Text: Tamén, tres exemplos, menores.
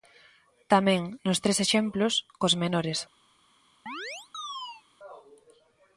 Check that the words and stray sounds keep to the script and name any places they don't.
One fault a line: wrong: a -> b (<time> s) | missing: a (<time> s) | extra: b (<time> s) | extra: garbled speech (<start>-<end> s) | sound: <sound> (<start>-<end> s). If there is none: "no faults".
extra: nos (1.3 s)
extra: cos (2.4 s)
sound: chirp (3.9-4.8 s)